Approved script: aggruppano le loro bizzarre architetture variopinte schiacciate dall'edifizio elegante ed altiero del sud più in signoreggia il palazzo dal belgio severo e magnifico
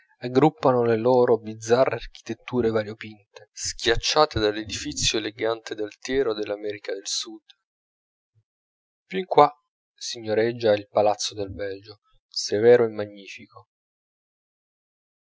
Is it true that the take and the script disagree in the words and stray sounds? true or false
true